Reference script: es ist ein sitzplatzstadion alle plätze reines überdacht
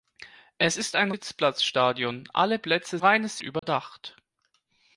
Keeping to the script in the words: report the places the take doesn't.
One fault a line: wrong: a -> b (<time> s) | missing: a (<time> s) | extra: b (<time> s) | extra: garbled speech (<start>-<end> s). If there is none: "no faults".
no faults